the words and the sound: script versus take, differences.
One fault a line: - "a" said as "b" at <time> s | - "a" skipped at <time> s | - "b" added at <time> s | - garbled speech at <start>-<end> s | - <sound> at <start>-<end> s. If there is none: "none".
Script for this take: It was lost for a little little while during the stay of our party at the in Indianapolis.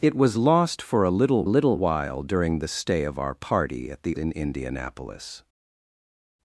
none